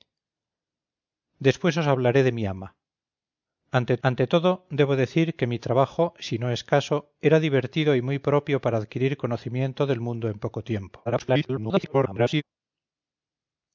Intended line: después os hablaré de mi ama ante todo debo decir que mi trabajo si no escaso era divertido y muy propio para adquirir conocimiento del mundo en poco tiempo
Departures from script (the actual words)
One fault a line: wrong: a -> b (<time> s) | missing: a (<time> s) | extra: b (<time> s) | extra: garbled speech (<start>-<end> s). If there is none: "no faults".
extra: ante (4.1 s)
extra: garbled speech (11.1-12.4 s)